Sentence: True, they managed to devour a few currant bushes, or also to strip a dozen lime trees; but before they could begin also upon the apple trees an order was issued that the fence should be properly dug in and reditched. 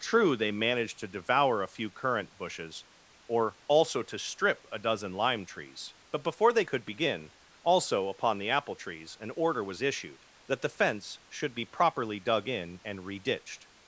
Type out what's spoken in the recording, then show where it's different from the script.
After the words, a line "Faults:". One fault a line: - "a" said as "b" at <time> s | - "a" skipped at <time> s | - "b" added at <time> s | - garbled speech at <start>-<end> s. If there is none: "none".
True, they managed to devour a few currant bushes, or also to strip a dozen lime trees; but before they could begin also upon the apple trees an order was issued that the fence should be properly dug in and reditched.
Faults:
none